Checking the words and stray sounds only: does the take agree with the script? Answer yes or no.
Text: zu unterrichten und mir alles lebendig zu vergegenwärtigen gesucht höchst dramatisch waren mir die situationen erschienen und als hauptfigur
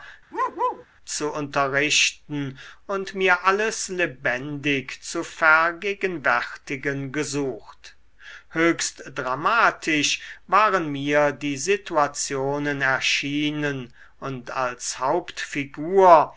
no